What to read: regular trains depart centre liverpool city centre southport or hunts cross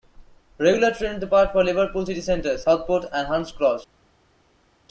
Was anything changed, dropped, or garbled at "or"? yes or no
yes